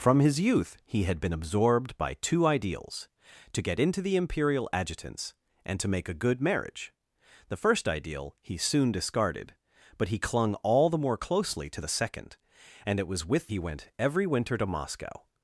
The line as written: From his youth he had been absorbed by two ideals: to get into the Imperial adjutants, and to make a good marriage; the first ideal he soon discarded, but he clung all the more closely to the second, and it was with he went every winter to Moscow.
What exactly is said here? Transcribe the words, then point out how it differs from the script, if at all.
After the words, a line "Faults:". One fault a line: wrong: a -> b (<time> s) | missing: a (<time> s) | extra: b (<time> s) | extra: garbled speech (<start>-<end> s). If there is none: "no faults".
From his youth he had been absorbed by two ideals: to get into the Imperial adjutants, and to make a good marriage; the first ideal he soon discarded, but he clung all the more closely to the second, and it was with he went every winter to Moscow.
Faults:
no faults